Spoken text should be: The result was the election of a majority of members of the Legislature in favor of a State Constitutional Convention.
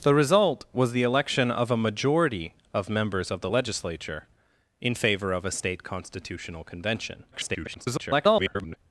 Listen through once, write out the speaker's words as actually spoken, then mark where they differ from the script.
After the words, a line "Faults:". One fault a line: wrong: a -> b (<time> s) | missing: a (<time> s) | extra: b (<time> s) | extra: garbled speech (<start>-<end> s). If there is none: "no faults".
The result was the election of a majority of members of the Legislature in favor of a State Constitutional Convention. [garbled]
Faults:
extra: garbled speech (7.3-8.8 s)